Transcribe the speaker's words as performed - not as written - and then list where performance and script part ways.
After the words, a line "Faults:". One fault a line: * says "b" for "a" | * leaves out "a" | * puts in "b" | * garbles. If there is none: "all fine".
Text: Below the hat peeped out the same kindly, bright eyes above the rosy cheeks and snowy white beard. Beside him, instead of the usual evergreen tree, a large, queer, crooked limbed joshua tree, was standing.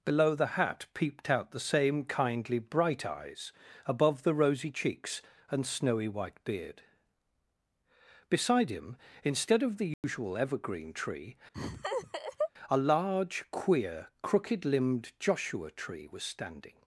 Below the hat peeped out the same kindly, bright eyes above the rosy cheeks and snowy white beard. Beside him, instead of the usual evergreen tree, a large, queer, crooked limbed joshua tree, was standing.
Faults:
all fine